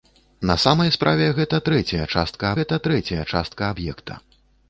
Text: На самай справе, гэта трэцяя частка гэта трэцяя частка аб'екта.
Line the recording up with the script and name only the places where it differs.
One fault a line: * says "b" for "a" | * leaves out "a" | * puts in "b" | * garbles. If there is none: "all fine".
all fine